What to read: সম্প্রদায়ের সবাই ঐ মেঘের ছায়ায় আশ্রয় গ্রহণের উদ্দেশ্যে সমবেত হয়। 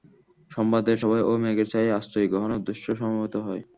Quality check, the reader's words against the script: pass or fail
pass